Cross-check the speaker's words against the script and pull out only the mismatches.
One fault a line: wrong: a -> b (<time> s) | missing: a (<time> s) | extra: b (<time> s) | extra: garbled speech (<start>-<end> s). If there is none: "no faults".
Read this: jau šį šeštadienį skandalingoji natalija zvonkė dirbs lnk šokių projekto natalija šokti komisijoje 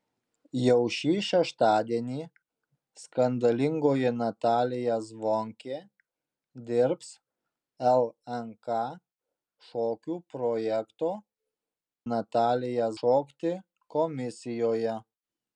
no faults